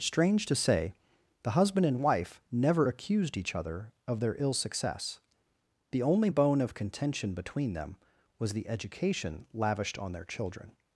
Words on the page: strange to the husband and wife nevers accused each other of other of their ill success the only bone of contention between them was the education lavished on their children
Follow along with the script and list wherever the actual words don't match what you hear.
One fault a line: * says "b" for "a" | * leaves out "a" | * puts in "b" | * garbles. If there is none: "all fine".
* puts in "say"
* says "never" for "nevers"
* leaves out "other of"